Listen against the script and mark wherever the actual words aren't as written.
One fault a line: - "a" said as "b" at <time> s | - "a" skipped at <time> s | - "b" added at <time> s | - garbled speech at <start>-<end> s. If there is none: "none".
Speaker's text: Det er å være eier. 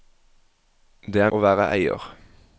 none